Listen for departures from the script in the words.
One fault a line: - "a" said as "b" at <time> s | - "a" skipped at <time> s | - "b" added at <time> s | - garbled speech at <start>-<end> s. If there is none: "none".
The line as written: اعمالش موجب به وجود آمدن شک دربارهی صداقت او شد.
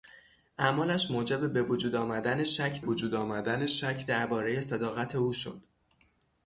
- "وجود آمدن شک" added at 2.8 s